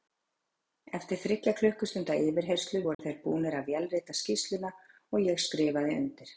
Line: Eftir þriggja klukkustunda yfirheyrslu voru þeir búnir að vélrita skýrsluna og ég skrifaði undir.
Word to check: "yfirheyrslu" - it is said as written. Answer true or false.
true